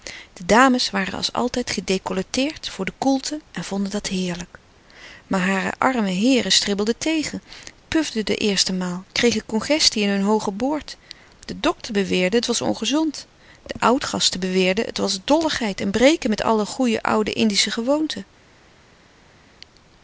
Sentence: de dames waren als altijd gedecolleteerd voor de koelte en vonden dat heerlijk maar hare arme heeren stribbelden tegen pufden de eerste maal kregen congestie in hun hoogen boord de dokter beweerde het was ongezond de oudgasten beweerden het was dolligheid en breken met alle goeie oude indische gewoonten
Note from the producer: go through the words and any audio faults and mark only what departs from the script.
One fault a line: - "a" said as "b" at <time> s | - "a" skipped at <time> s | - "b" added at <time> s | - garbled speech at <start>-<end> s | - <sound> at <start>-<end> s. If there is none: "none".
none